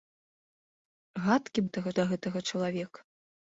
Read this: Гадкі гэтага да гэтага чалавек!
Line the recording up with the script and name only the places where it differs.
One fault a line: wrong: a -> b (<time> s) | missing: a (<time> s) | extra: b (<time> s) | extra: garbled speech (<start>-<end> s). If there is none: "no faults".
no faults